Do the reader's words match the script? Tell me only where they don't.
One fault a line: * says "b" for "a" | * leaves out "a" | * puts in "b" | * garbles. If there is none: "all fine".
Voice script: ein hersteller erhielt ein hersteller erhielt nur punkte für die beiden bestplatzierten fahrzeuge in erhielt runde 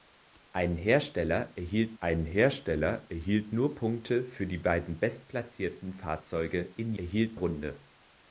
all fine